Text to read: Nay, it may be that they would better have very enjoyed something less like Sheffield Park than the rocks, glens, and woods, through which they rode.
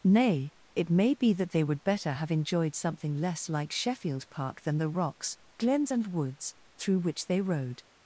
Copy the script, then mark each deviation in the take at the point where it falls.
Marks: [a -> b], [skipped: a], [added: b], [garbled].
Nay, it may be that they would better have [skipped: very] enjoyed something less like Sheffield Park than the rocks, glens, and woods, through which they rode.